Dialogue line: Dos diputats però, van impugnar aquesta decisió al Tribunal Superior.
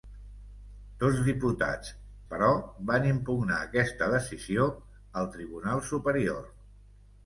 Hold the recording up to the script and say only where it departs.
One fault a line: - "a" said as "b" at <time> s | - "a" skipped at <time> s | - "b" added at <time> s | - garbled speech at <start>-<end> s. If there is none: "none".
none